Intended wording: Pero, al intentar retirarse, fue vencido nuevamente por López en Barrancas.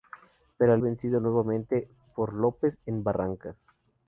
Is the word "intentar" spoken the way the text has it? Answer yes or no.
no